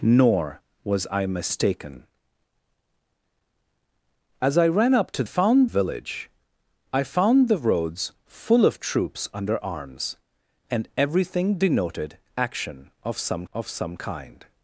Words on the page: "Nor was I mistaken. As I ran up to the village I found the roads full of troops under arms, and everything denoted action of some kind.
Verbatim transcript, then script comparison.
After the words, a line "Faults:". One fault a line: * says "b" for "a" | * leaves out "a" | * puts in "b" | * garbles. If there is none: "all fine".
"Nor was I mistaken. As I ran up to found village I found the roads full of troops under arms, and everything denoted action of some of some kind.
Faults:
* says "found" for "the"
* puts in "of some"